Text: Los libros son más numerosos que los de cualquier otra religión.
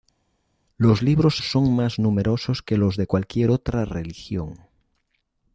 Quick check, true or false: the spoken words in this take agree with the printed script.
true